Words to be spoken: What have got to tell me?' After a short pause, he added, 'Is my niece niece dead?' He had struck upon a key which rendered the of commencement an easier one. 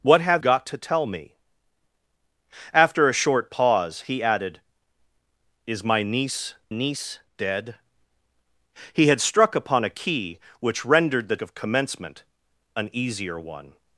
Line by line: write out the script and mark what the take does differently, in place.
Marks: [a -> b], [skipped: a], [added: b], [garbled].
What have got to tell me?' After a short pause, he added, 'Is my niece niece dead?' He had struck upon a key which rendered the of commencement an easier one.